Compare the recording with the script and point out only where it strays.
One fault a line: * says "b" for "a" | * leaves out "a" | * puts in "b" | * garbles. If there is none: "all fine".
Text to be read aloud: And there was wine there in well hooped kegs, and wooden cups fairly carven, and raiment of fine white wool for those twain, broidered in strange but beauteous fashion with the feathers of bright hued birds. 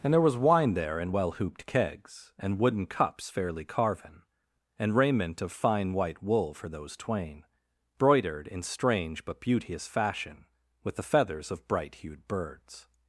all fine